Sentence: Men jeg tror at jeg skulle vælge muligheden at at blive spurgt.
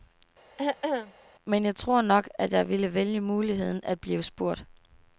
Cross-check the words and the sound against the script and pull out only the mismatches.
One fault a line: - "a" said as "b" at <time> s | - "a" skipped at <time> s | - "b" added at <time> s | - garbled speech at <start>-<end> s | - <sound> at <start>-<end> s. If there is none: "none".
- throat clearing at 0.6-1.1 s
- "nok" added at 2.0 s
- "skulle" said as "ville" at 2.7 s
- "at" skipped at 4.0 s